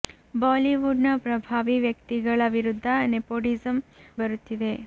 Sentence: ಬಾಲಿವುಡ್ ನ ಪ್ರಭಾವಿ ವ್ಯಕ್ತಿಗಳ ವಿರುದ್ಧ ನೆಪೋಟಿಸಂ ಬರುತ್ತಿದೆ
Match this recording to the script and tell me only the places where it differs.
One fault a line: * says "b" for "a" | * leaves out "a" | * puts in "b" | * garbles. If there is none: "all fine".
all fine